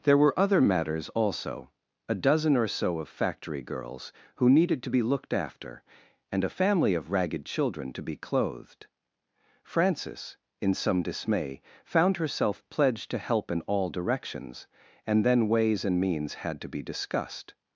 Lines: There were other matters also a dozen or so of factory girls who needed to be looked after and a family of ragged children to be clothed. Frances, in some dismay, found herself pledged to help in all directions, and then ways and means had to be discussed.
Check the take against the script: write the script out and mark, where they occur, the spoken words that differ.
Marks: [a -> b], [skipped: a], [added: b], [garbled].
There were other matters also a dozen or so of factory girls who needed to be looked after and a family of ragged children to be clothed. Frances, in some dismay, found herself pledged to help in all directions, and then ways and means had to be discussed.